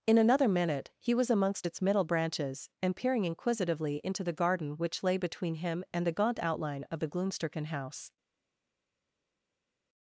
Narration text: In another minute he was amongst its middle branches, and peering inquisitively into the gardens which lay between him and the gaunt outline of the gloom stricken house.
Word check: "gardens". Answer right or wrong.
wrong